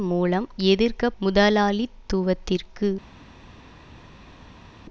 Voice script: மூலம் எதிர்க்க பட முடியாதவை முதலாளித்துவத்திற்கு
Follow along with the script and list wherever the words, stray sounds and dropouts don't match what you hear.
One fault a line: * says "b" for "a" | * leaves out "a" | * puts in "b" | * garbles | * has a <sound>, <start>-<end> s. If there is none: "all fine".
* leaves out "பட முடியாதவை"